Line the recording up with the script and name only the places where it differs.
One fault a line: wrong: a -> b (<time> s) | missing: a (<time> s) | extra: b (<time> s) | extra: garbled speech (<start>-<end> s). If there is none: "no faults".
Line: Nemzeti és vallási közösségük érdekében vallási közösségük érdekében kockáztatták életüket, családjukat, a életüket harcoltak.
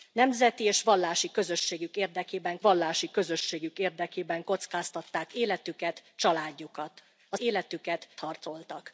no faults